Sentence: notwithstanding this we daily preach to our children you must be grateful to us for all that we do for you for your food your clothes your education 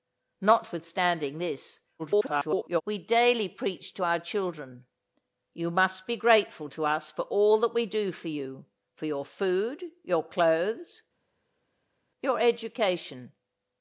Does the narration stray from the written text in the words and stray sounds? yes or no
yes